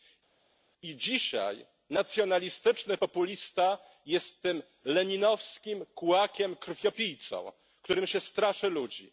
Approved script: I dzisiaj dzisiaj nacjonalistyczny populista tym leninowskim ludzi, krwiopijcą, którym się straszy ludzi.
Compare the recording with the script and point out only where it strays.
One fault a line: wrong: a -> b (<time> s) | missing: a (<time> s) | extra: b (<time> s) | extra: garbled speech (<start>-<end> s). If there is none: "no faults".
missing: dzisiaj (1.7 s)
extra: jest (4.1 s)
wrong: ludzi -> kułakiem (5.9 s)